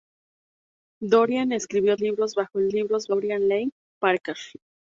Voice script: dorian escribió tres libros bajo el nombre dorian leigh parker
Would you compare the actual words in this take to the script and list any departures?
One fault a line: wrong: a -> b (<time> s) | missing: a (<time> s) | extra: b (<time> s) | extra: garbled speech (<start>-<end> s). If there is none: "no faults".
missing: tres (1.9 s)
wrong: nombre -> libros (2.7 s)